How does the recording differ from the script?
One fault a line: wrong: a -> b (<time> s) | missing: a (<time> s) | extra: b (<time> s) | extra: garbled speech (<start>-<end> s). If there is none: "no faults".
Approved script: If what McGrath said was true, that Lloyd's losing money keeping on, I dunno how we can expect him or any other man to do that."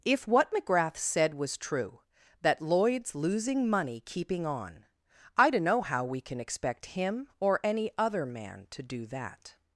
no faults